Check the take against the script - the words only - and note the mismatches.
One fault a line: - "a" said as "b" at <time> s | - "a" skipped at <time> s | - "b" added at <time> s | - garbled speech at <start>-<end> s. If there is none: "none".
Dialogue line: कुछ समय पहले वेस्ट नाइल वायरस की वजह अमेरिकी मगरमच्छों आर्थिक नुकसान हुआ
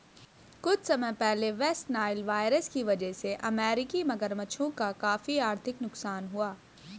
- "से" added at 3.1 s
- "का काफी" added at 4.7 s